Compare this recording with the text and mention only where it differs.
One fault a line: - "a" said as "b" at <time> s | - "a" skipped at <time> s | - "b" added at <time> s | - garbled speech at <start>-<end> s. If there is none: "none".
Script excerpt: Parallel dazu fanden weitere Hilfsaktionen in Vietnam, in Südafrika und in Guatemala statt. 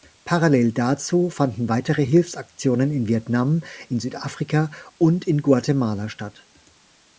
none